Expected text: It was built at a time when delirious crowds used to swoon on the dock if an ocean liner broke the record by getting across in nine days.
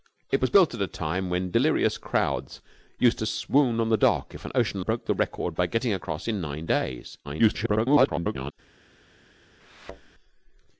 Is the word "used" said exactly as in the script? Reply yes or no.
yes